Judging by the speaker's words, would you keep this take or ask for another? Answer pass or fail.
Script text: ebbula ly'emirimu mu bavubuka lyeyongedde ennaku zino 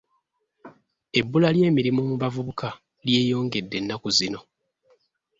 pass